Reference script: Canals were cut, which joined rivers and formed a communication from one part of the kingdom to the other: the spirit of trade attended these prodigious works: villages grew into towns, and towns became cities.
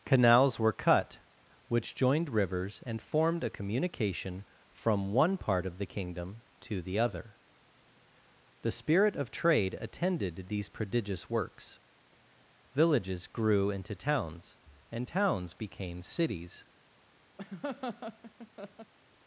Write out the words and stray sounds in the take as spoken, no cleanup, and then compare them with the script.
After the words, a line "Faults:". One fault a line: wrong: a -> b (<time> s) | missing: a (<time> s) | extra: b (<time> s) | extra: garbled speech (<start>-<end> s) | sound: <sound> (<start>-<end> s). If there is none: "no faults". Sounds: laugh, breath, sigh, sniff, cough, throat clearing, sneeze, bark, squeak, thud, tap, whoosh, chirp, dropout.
Canals were cut, which joined rivers and formed a communication from one part of the kingdom to the other: the spirit of trade attended these prodigious works: villages grew into towns, and towns became cities.
Faults:
sound: laugh (17.4-18.9 s)